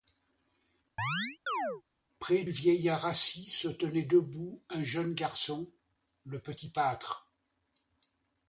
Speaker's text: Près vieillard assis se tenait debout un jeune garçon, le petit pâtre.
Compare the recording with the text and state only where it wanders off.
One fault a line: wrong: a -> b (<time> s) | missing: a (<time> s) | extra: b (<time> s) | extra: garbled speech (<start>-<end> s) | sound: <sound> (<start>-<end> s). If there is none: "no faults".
sound: chirp (1.0-1.8 s)